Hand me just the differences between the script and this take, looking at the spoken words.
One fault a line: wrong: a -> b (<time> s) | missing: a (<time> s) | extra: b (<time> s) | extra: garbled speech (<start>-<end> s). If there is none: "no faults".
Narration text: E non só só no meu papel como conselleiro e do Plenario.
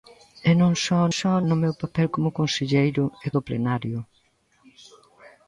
no faults